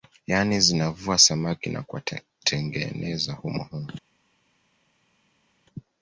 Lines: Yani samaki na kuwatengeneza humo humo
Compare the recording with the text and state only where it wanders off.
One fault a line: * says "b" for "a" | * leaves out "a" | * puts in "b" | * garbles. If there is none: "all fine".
* puts in "zinavua"